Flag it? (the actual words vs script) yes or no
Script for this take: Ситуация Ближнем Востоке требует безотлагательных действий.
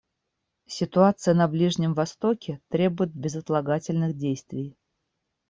yes